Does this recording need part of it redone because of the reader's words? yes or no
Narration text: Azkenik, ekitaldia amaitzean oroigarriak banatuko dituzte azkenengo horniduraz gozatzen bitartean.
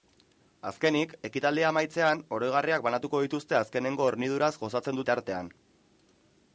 no